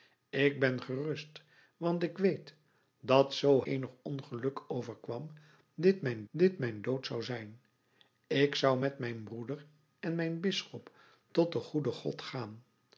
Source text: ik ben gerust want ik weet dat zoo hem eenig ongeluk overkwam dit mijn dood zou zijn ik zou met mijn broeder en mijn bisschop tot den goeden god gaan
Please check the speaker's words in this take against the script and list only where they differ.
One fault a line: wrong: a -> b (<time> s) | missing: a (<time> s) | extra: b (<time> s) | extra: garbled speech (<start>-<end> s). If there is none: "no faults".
missing: hem (3.6 s)
extra: dit mijn (6.3 s)